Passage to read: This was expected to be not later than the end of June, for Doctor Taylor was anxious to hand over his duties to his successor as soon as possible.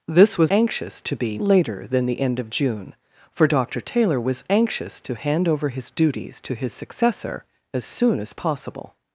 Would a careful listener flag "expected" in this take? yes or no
yes